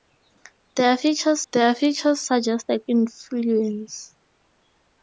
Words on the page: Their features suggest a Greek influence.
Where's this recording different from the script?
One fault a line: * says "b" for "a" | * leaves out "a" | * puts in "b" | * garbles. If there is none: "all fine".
* puts in "their features"
* leaves out "Greek"